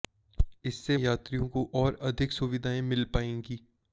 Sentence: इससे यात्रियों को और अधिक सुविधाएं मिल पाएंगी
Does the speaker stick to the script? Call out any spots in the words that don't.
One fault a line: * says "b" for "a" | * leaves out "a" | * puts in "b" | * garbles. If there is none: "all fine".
all fine